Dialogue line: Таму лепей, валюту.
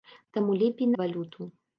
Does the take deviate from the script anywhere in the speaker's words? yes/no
no